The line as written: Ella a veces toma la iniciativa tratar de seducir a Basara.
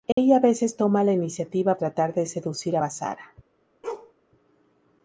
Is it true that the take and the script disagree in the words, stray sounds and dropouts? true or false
true